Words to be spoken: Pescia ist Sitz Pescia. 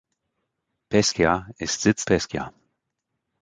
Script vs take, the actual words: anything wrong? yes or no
no